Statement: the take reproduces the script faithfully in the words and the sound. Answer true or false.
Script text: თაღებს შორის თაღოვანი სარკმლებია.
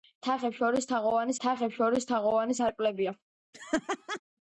false